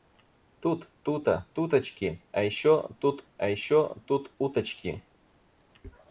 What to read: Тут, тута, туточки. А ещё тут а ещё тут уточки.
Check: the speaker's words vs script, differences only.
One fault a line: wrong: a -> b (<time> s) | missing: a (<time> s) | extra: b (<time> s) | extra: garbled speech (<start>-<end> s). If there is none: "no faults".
no faults